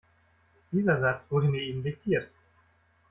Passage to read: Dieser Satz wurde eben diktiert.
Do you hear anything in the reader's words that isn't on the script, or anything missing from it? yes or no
yes